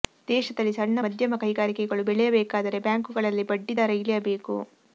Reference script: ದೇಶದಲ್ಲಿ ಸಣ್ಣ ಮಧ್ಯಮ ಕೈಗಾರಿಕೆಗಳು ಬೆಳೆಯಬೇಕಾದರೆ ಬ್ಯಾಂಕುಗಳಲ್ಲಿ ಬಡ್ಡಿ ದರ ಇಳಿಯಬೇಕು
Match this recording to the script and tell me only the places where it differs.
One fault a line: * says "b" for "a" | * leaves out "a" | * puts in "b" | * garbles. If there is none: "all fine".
all fine